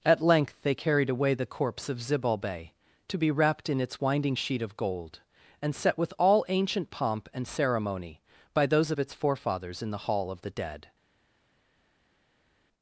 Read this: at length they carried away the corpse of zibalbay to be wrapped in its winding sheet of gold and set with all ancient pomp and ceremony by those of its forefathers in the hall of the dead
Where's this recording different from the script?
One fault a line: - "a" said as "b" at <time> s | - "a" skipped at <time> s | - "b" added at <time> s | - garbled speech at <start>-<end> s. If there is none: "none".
none